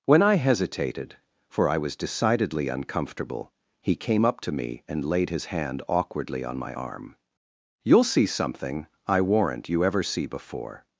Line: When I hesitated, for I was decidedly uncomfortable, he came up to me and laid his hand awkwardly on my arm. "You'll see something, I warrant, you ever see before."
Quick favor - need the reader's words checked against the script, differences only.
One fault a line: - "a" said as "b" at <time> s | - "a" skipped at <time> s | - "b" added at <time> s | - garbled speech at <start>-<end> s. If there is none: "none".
none